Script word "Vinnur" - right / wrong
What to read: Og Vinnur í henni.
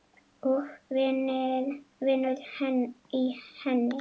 right